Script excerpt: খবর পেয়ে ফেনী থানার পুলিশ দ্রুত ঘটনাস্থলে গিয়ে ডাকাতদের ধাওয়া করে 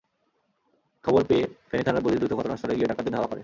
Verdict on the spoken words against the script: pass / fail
pass